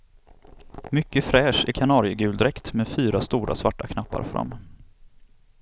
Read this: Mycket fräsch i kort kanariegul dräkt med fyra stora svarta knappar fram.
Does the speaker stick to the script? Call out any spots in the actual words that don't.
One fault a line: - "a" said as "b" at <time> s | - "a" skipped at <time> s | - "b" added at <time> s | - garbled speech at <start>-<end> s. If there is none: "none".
- "kort" skipped at 1.7 s